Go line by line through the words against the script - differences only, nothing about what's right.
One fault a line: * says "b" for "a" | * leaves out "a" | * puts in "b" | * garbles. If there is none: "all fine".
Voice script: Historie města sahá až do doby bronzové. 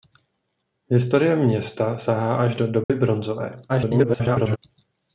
* garbles